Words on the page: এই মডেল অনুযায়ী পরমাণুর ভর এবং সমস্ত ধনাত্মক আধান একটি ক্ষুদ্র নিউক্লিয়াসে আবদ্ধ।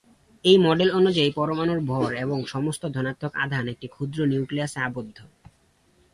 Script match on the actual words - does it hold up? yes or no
yes